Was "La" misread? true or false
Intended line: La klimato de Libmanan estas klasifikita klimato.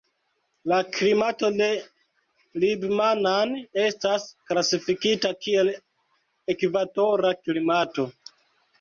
false